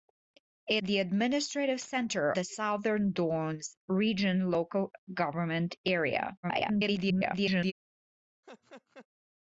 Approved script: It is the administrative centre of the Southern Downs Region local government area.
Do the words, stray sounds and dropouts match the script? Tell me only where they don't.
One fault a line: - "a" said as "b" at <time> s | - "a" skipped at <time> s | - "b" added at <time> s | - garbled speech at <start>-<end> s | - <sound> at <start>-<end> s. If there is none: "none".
- "is" skipped at 0.8 s
- "of" skipped at 2.3 s
- garbled speech at 6.4-7.7 s
- laugh at 8.4-9.1 s